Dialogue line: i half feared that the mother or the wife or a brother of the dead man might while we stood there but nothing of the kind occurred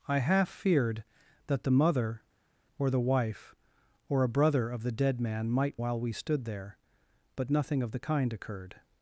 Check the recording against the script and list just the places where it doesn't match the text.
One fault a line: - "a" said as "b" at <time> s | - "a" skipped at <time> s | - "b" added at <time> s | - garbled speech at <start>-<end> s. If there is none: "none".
none